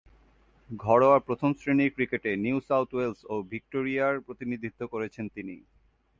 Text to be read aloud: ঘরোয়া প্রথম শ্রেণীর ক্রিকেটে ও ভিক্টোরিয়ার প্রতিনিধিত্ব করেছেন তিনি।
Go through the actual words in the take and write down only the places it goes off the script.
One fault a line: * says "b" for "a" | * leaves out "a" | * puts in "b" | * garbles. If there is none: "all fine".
* puts in "নিউ সাউথ ওয়েলস"